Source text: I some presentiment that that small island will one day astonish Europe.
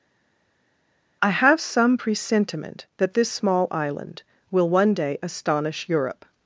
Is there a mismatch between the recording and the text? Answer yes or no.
yes